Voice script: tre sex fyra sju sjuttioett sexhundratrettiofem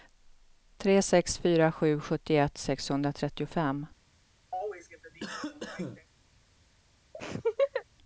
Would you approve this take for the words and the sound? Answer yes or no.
no